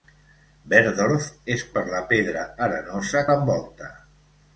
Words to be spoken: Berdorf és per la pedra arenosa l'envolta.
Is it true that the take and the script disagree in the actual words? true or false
false